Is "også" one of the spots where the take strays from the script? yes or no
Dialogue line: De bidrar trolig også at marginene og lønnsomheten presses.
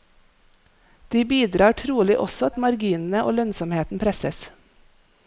no